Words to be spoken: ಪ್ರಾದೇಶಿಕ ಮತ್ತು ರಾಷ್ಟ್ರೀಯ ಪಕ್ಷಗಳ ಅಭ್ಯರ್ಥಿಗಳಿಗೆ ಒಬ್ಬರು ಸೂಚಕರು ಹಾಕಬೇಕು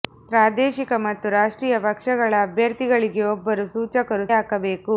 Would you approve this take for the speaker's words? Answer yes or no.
yes